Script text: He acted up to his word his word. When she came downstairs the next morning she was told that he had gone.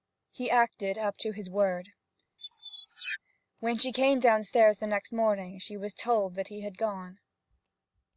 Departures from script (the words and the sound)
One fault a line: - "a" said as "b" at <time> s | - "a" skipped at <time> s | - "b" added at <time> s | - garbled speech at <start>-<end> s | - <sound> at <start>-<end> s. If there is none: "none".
- "his word" skipped at 1.9 s
- squeak at 2.4-3.2 s